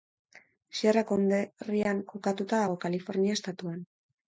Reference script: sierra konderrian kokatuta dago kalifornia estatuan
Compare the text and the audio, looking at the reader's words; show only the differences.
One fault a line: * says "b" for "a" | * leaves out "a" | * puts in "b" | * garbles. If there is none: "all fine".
all fine